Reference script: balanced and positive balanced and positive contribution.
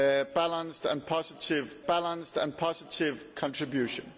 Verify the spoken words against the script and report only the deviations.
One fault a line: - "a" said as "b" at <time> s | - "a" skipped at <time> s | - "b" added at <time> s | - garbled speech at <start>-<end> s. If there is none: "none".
none